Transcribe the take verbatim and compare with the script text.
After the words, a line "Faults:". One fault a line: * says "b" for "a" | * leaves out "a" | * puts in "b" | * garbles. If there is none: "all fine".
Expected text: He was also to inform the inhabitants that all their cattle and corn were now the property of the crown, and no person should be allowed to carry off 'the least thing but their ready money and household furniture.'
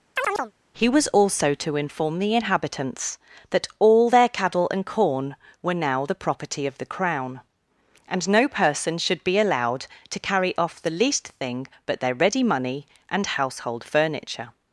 He was also to inform the inhabitants that all their cattle and corn were now the property of the crown, and no person should be allowed to carry off 'the least thing but their ready money and household furniture.'
Faults:
all fine